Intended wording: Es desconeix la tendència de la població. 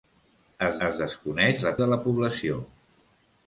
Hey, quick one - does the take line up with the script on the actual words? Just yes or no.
no